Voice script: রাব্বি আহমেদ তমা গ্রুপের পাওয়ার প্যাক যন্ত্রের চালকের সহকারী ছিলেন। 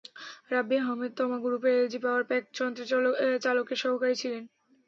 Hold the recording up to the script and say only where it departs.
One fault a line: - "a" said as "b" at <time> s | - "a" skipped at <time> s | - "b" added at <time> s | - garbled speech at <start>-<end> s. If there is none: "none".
- "এলজি" added at 1.8 s